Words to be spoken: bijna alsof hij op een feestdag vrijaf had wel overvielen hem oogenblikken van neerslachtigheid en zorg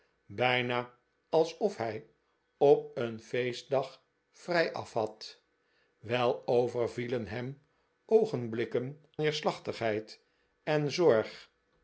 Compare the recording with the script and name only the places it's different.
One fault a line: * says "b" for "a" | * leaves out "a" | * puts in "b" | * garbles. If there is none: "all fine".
* leaves out "van"